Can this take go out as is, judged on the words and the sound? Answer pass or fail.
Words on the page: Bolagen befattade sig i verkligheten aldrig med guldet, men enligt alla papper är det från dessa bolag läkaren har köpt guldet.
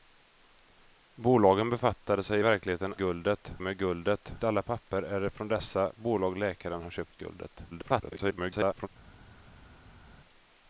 fail